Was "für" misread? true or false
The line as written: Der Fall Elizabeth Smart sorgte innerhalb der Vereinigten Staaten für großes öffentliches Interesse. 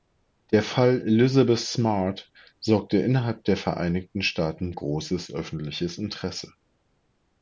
true